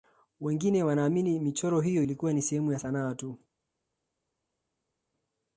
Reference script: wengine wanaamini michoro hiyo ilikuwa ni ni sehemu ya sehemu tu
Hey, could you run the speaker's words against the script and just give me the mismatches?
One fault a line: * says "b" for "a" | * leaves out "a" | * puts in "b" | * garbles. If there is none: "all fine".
* leaves out "ni"
* says "sanaa" for "sehemu"